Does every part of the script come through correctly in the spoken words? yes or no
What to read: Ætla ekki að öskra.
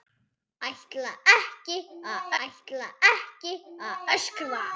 no